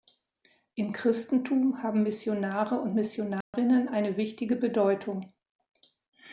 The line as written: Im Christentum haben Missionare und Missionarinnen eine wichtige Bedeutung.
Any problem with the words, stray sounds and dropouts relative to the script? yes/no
yes